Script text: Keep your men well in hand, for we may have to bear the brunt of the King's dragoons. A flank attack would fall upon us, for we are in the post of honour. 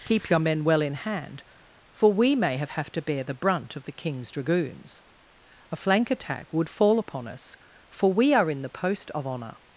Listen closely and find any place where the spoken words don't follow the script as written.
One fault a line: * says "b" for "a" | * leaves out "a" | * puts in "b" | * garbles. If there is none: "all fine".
* puts in "have"